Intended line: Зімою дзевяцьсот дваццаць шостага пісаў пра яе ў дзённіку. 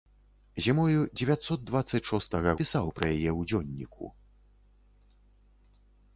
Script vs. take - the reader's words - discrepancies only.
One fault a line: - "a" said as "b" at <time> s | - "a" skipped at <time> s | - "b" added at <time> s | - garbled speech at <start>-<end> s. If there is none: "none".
none